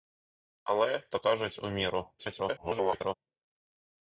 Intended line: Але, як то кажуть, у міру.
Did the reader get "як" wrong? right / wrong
wrong